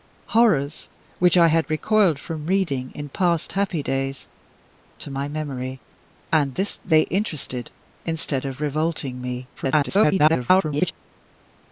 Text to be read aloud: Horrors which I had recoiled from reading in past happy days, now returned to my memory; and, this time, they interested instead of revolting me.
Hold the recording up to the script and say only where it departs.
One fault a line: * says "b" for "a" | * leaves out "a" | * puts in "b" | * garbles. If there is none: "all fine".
* leaves out "now returned"
* leaves out "time"
* garbles